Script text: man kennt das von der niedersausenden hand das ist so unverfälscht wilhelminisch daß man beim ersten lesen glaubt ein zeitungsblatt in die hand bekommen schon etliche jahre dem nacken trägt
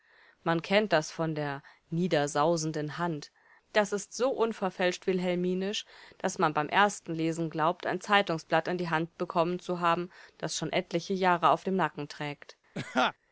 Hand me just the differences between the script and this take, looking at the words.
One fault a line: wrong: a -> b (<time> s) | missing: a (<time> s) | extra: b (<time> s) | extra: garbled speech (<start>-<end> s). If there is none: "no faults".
extra: zu haben das (9.6 s)
extra: auf (11.5 s)